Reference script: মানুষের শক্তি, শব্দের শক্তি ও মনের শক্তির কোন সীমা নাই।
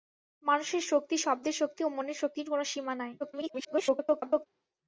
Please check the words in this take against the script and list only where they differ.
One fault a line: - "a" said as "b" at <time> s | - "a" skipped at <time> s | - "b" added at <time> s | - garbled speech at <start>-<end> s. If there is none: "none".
- garbled speech at 3.2-4.5 s